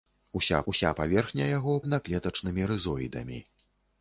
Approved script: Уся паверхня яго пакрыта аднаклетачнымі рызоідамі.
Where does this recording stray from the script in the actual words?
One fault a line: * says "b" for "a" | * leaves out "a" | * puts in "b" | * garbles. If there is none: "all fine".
* puts in "уся"
* leaves out "пакрыта"